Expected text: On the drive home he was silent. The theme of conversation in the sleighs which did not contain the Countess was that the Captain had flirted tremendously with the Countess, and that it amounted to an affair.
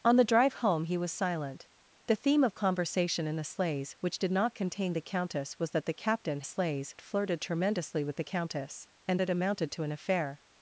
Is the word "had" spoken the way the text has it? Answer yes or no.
no